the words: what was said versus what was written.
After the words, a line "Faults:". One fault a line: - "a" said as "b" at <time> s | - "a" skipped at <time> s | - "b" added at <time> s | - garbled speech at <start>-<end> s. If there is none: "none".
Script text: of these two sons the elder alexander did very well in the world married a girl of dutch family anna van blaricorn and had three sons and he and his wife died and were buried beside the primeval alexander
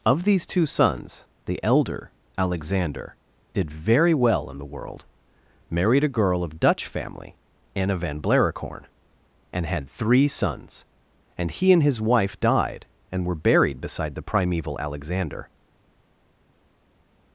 of these two sons the elder alexander did very well in the world married a girl of dutch family anna van blaricorn and had three sons and he and his wife died and were buried beside the primeval alexander
Faults:
none